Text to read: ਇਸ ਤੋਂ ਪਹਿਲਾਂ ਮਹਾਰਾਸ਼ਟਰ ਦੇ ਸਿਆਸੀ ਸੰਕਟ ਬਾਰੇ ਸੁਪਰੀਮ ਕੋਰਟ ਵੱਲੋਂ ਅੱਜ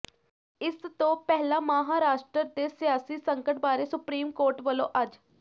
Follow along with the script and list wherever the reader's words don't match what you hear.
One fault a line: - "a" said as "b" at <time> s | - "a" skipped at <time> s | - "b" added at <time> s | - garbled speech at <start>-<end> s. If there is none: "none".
none